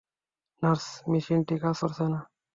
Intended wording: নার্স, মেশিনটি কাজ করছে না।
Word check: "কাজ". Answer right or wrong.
right